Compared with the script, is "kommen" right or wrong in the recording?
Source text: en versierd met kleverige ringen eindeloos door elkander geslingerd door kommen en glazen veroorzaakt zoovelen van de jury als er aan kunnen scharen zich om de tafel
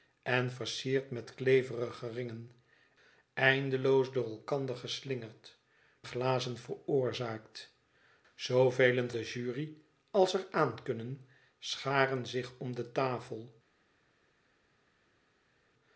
wrong